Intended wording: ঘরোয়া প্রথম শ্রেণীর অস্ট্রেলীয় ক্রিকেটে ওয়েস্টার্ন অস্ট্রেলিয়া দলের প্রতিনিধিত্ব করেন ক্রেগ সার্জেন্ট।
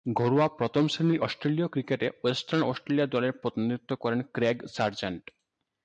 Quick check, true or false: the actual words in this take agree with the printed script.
true